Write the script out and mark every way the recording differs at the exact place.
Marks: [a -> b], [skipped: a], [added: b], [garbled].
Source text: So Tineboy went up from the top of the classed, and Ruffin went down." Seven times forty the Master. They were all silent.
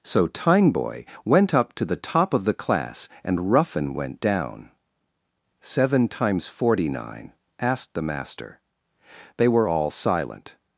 So Tineboy went up [from -> to] the top of the [classed, -> class] and Ruffin went down." Seven times forty [added: nine asked] the Master. They were all silent.